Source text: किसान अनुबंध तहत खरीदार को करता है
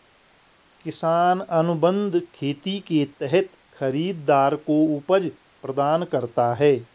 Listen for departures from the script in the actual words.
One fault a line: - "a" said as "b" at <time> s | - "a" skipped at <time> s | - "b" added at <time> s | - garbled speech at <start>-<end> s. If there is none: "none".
- "खेती के" added at 2.4 s
- "उपज प्रदान" added at 5.0 s